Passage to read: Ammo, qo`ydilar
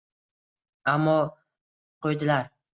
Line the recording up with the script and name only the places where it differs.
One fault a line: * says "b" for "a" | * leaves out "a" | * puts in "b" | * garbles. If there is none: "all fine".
all fine